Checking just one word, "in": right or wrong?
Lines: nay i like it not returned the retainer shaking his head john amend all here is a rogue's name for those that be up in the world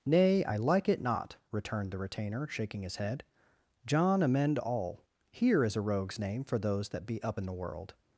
right